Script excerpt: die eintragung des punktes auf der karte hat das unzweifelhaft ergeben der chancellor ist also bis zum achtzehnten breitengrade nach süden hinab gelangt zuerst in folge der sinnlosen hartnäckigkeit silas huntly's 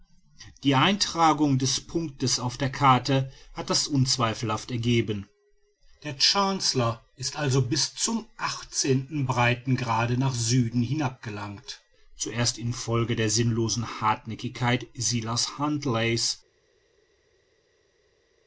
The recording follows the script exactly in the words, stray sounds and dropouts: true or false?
true